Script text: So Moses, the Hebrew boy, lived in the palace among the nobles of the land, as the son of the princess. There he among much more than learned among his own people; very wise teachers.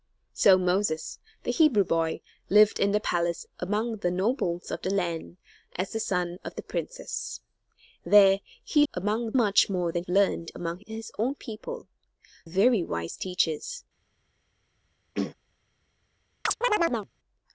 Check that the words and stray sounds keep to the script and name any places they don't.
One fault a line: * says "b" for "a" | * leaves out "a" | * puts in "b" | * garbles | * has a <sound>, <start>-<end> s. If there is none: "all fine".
* has a throat clearing, 15.1-15.3 s
* has a chirp, 16.4-17.1 s